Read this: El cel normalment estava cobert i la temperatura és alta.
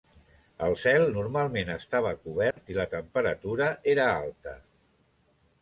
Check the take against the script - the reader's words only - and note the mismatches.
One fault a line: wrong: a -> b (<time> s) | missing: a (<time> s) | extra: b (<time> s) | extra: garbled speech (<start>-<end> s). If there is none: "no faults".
wrong: és -> era (4.0 s)